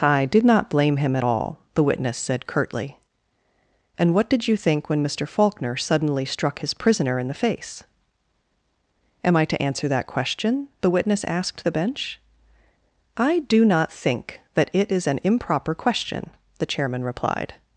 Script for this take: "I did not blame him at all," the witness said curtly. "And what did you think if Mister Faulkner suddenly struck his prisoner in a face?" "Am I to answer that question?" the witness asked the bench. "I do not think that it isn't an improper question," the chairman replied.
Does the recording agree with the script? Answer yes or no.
no